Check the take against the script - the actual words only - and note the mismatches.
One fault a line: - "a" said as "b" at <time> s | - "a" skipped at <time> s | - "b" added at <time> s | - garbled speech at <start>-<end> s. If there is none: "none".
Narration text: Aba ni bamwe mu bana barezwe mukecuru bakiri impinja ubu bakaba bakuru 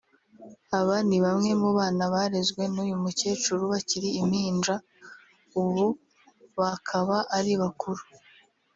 - "n'uyu" added at 2.7 s
- "ari" added at 7.4 s